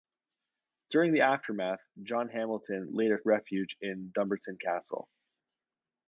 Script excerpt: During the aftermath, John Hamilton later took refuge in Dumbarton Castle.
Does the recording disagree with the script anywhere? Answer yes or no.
yes